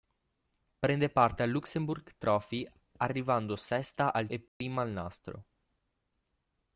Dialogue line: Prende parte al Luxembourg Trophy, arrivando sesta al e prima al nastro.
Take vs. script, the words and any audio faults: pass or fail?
fail